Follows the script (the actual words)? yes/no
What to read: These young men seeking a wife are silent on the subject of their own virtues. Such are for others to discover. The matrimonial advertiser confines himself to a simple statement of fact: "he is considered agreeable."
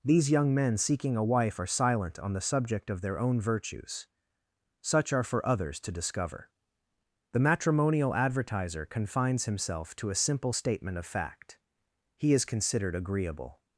yes